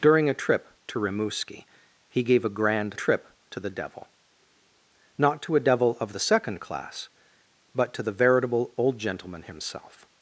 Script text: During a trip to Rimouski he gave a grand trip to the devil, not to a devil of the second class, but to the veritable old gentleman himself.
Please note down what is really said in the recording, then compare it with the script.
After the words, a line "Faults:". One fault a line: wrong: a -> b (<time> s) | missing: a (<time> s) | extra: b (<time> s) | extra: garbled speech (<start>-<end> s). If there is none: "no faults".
During a trip to Rimouski he gave a grand trip to the devil, not to a devil of the second class, but to the veritable old gentleman himself.
Faults:
no faults